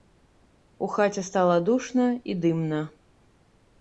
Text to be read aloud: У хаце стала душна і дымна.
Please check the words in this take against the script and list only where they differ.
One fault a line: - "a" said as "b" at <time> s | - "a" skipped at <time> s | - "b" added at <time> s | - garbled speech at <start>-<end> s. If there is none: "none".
none